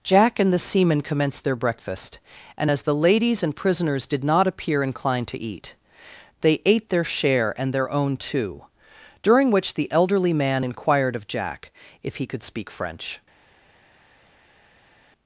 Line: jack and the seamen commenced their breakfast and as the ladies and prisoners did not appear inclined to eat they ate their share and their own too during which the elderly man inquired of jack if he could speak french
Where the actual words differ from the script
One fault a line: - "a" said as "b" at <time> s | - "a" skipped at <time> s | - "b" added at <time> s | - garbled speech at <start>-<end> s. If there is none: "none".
none